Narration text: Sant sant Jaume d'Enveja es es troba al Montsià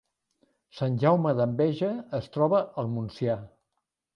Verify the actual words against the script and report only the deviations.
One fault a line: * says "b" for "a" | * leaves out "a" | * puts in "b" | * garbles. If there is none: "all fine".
* leaves out "sant"
* leaves out "es"